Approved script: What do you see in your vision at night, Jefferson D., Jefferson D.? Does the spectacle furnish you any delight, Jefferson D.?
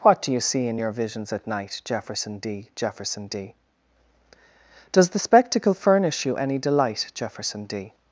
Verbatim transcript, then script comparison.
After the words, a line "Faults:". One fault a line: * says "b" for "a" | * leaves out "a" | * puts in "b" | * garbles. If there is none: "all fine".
What do you see in your visions at night, Jefferson D., Jefferson D.? Does the spectacle furnish you any delight, Jefferson D.?
Faults:
* says "visions" for "vision"